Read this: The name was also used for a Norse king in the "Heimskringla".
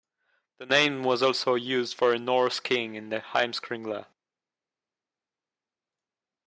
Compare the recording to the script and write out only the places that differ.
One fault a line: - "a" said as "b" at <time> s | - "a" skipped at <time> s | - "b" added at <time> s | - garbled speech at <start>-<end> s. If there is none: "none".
none